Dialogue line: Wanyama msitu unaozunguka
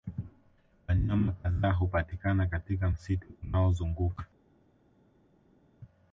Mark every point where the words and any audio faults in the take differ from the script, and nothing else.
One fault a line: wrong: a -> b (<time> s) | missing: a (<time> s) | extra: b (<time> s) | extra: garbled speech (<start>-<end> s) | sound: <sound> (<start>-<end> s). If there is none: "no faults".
extra: kadhaa hupatikana katika (1.3 s)